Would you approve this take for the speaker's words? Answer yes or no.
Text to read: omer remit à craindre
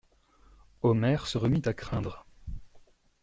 no